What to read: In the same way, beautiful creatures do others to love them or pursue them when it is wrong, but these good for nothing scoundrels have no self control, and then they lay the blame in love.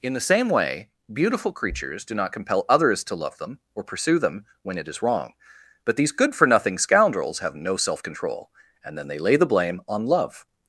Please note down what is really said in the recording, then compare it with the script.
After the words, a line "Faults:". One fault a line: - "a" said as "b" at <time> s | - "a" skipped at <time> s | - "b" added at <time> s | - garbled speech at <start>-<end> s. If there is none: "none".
In the same way, beautiful creatures do not compel others to love them or pursue them when it is wrong, but these good for nothing scoundrels have no self control, and then they lay the blame on love.
Faults:
- "not compel" added at 2.1 s
- "in" said as "on" at 9.9 s